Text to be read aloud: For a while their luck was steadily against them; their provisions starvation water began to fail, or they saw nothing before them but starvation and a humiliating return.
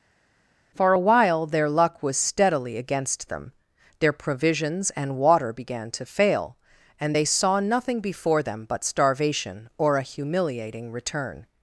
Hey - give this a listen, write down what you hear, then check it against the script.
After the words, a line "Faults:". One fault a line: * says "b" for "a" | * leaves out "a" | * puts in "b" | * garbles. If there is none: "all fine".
For a while their luck was steadily against them; their provisions and water began to fail, and they saw nothing before them but starvation or a humiliating return.
Faults:
* says "and" for "starvation"
* says "and" for "or"
* says "or" for "and"